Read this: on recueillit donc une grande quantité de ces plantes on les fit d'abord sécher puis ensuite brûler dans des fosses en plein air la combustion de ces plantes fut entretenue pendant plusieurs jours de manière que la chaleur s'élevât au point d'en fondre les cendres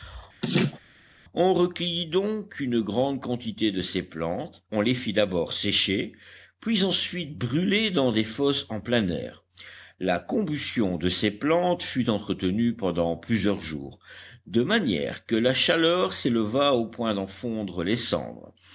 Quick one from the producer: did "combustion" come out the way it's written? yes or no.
yes